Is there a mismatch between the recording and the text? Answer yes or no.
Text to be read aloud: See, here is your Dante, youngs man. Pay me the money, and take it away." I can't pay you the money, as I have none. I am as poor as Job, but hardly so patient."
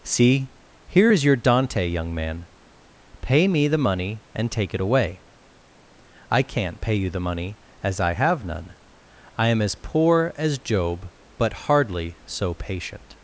yes